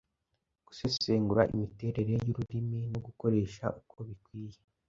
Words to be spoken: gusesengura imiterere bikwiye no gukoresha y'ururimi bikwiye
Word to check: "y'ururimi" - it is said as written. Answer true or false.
false